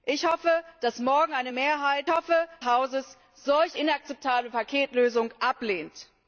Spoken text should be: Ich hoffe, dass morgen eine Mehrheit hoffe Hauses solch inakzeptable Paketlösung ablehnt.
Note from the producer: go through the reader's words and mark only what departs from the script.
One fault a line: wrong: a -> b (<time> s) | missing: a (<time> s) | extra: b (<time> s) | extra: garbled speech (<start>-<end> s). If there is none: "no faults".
no faults